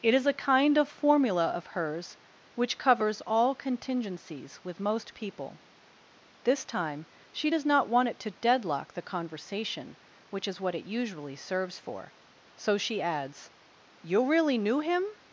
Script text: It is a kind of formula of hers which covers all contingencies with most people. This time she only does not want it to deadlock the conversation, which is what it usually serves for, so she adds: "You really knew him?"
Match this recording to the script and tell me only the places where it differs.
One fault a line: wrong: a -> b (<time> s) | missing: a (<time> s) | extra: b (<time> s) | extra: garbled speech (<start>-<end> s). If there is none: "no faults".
missing: only (7.5 s)